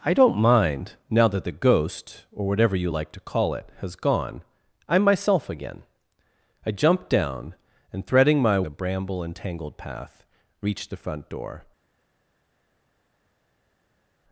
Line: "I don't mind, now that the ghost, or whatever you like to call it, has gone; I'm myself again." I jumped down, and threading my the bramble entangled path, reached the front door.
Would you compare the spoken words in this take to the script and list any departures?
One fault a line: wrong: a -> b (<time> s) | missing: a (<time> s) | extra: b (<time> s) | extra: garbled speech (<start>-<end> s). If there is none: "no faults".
no faults